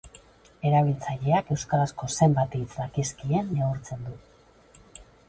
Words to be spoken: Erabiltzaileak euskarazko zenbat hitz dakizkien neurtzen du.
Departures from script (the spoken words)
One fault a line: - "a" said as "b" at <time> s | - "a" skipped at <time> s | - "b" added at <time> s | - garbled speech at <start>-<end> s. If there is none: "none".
none